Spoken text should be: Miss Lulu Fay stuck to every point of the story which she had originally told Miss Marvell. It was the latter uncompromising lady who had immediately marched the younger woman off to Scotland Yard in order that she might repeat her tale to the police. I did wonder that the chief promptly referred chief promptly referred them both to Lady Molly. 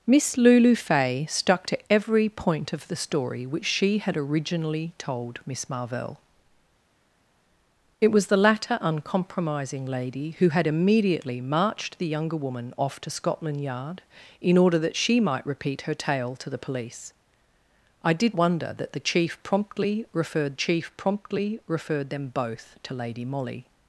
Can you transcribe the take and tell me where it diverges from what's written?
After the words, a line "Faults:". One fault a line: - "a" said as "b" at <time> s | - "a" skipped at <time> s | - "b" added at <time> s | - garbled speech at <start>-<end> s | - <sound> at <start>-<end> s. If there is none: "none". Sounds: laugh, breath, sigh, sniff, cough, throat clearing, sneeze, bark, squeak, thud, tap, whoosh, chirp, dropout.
Miss Lulu Fay stuck to every point of the story which she had originally told Miss Marvell. It was the latter uncompromising lady who had immediately marched the younger woman off to Scotland Yard in order that she might repeat her tale to the police. I did wonder that the chief promptly referred chief promptly referred them both to Lady Molly.
Faults:
none